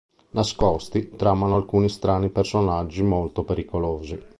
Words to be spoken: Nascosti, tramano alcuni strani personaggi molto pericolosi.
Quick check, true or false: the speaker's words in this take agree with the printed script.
true